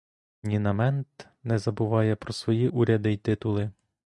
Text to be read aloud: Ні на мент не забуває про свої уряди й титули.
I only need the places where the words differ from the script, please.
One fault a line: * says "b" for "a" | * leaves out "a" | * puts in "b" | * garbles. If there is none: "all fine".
all fine